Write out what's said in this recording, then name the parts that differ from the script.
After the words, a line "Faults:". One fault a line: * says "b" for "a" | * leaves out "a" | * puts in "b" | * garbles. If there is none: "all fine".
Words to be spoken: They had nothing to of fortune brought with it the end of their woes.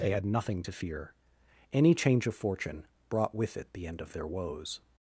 They had nothing to fear; any change of fortune brought with it the end of their woes.
Faults:
* puts in "fear any change"